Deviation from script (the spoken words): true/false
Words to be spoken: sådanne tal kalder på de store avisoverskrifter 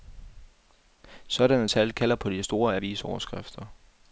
false